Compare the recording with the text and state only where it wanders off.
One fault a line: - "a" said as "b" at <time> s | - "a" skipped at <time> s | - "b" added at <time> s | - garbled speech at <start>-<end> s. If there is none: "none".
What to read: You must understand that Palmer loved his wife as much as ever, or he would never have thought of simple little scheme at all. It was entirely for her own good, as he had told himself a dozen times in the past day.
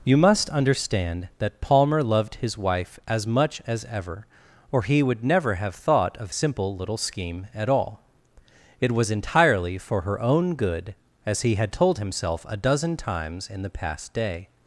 none